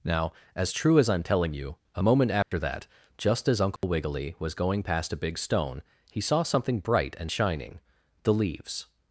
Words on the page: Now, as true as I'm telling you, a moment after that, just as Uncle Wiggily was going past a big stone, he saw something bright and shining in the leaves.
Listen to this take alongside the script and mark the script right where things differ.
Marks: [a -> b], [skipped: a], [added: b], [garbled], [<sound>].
Now, as true as I'm telling you, a moment after [dropout] that, just as Uncle [dropout] Wiggily was going past a big stone, he saw something bright and shining [skipped: in] the leaves.